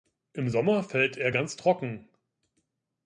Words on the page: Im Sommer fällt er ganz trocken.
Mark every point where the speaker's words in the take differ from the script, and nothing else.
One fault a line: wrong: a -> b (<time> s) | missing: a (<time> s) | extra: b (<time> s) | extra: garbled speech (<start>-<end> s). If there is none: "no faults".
no faults